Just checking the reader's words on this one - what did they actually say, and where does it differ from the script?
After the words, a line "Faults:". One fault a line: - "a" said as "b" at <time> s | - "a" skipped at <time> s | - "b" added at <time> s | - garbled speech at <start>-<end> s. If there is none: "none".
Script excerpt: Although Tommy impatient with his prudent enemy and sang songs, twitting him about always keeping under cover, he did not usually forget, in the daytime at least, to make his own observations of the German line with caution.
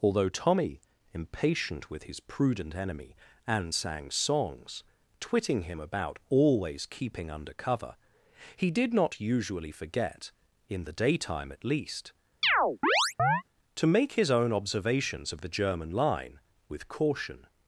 Although Tommy impatient with his prudent enemy and sang songs, twitting him about always keeping under cover, he did not usually forget, in the daytime at least, to make his own observations of the German line with caution.
Faults:
none